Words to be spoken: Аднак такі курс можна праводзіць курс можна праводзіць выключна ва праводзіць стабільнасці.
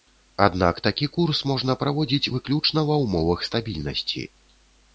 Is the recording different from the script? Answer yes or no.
yes